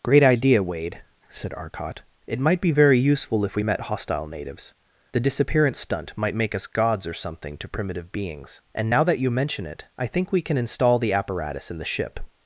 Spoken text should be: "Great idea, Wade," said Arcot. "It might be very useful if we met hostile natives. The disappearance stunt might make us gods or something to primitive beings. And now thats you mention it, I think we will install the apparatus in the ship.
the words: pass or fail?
fail